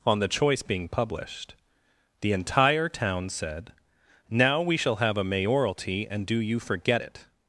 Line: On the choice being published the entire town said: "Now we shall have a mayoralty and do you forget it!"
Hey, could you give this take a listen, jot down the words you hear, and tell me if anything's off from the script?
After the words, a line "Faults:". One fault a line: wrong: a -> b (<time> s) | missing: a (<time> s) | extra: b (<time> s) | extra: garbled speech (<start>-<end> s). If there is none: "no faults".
On the choice being published the entire town said: "Now we shall have a mayoralty and do you forget it!"
Faults:
no faults